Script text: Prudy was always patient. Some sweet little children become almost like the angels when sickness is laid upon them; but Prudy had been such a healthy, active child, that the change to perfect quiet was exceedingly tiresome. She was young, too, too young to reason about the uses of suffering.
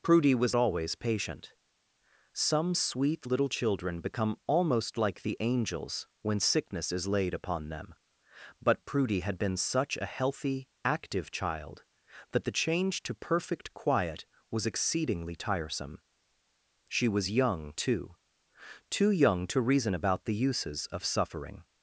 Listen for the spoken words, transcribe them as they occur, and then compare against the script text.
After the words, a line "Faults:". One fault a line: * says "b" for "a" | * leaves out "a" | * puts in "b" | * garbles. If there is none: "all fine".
Prudy was always patient. Some sweet little children become almost like the angels when sickness is laid upon them; but Prudy had been such a healthy, active child, that the change to perfect quiet was exceedingly tiresome. She was young, too, too young to reason about the uses of suffering.
Faults:
all fine